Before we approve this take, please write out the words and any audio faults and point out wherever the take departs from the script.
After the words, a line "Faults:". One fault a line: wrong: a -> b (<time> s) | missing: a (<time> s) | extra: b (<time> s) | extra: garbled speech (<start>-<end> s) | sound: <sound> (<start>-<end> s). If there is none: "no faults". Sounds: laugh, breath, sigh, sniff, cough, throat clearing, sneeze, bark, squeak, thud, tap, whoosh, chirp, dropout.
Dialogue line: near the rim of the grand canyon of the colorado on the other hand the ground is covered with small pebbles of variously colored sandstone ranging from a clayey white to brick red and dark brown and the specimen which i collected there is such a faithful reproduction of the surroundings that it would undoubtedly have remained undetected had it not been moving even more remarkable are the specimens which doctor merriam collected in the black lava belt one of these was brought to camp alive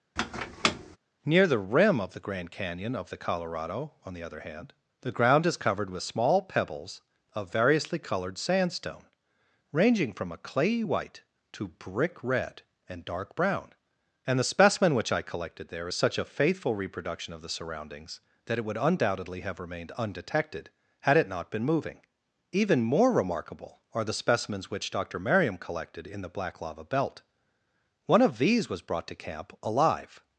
near the rim of the grand canyon of the colorado on the other hand the ground is covered with small pebbles of variously colored sandstone ranging from a clayey white to brick red and dark brown and the specimen which i collected there is such a faithful reproduction of the surroundings that it would undoubtedly have remained undetected had it not been moving even more remarkable are the specimens which doctor merriam collected in the black lava belt one of these was brought to camp alive
Faults:
sound: squeak (0.2-1.0 s)